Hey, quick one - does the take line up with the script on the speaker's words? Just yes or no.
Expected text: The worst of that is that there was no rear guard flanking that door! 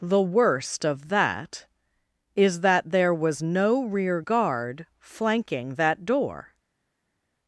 yes